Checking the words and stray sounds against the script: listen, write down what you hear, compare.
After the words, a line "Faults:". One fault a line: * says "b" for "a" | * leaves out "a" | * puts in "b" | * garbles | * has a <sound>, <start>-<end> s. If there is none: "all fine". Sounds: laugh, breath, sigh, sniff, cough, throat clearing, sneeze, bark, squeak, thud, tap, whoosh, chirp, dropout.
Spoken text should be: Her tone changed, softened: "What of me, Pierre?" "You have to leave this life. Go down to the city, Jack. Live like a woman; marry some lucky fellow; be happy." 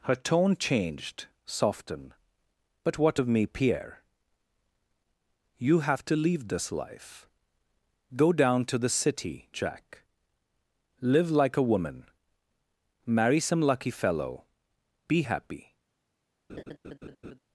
Her tone changed, softened: "But what of me, Pierre?" "You have to leave this life. Go down to the city, Jack. Live like a woman; marry some lucky fellow; be happy."
Faults:
* puts in "But"
* has a laugh, 16.5-17.4 s